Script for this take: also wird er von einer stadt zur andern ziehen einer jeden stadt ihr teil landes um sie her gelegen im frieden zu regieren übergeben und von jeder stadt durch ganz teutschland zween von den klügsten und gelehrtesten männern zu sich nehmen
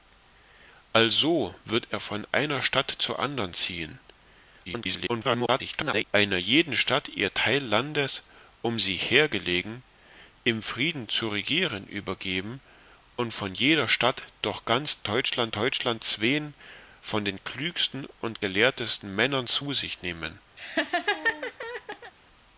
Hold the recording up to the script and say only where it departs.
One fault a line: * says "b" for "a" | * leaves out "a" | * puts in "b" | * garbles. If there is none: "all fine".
* garbles
* puts in "teutschland"